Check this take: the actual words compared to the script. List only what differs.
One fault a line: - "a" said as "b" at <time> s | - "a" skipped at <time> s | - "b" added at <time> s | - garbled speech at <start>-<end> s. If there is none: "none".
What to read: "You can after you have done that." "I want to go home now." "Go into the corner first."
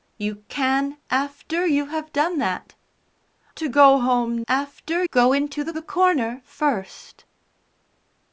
- "I want" skipped at 2.7 s
- "now" said as "after" at 4.5 s
- "the" added at 5.7 s